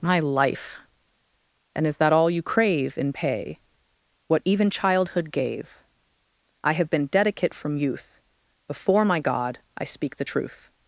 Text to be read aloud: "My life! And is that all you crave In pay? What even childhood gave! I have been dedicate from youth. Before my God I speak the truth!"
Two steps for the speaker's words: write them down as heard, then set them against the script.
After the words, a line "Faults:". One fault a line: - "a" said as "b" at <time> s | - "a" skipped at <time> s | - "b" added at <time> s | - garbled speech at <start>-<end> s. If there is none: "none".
"My life! And is that all you crave In pay? What even childhood gave! I have been dedicate from youth. Before my God I speak the truth!"
Faults:
none